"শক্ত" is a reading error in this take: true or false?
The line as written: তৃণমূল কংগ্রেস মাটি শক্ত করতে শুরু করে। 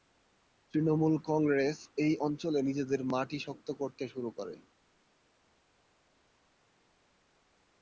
false